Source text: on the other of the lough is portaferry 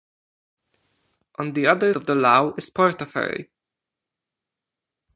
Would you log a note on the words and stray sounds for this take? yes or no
no